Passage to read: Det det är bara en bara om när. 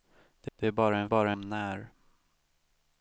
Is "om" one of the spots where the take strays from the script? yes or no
no